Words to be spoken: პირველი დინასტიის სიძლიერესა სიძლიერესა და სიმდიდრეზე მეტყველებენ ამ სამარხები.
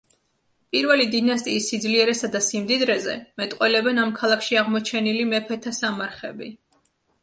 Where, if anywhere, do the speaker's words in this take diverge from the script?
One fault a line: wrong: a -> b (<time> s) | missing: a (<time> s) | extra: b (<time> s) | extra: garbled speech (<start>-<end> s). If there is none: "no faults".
missing: სიძლიერესა (2.3 s)
extra: ქალაქში აღმოჩენილი მეფეთა (4.2 s)